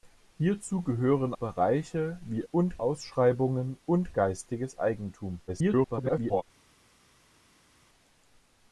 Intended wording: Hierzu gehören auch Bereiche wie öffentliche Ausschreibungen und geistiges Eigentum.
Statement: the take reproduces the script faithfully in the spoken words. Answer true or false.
false